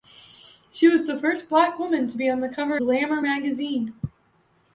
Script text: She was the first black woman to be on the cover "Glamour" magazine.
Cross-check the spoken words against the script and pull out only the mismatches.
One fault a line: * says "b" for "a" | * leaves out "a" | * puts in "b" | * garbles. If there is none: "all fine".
all fine